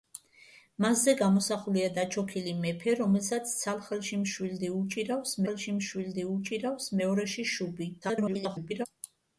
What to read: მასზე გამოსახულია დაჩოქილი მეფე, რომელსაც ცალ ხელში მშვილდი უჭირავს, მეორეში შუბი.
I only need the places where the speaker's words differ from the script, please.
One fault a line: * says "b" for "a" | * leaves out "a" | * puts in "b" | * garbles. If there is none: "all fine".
* puts in "ხელში მშვილდი უჭირავს"
* garbles